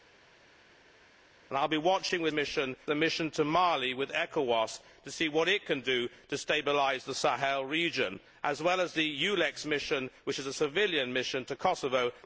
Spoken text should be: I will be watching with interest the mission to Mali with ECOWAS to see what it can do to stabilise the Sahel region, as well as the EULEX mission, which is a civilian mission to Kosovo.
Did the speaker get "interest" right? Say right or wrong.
wrong